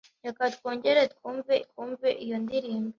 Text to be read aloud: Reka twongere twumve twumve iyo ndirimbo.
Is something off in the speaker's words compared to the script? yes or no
no